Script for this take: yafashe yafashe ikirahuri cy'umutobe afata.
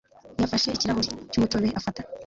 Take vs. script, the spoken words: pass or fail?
fail